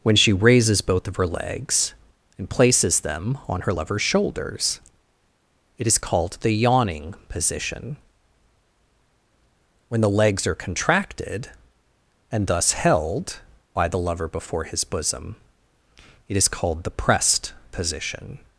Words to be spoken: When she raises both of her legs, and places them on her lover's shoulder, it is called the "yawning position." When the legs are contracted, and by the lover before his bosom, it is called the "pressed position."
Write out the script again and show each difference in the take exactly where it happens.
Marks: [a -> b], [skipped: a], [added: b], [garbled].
When she raises both of her legs, and places them on her lover's [shoulder, -> shoulders] it is called the "yawning position." When the legs are contracted, and [added: thus held] by the lover before his bosom, it is called the "pressed position."